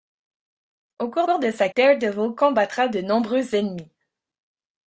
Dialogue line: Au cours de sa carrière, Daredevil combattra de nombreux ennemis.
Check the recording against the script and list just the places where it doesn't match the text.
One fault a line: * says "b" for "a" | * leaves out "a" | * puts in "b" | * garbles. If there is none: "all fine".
* puts in "cours"
* leaves out "carrière"